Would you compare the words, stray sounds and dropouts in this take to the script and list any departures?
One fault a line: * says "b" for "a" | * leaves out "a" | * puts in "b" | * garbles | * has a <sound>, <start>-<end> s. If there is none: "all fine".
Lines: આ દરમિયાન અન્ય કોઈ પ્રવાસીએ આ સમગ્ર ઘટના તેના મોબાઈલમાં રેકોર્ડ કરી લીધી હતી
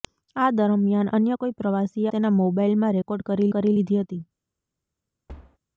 * leaves out "આ સમગ્ર ઘટના"
* puts in "કરી"
* has a thud, 5.3-5.6 s